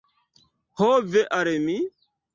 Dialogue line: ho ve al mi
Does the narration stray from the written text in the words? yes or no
no